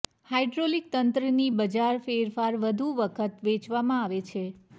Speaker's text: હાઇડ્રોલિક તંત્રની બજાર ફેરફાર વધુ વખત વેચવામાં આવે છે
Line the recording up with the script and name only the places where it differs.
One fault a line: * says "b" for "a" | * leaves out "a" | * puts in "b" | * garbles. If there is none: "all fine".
all fine